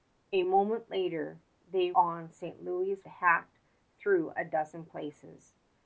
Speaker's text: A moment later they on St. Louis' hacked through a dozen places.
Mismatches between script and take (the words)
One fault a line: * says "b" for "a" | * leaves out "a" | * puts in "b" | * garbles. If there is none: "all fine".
all fine